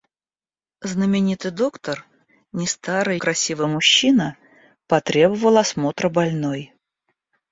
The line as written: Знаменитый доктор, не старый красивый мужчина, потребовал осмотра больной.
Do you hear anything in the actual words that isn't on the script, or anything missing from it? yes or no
no